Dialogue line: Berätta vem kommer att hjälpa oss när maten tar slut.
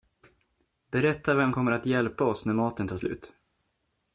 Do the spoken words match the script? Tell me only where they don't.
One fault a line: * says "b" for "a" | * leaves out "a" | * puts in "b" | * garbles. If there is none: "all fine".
all fine